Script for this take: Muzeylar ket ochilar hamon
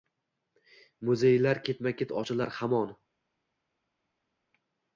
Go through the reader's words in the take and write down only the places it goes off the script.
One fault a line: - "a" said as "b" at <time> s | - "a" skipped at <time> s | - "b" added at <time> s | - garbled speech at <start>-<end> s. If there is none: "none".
- "ketma" added at 1.7 s